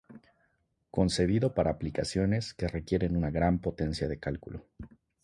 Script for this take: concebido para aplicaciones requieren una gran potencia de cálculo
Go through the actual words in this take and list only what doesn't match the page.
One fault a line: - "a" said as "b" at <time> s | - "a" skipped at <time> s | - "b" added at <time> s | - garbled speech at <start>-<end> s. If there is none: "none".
- "que" added at 2.5 s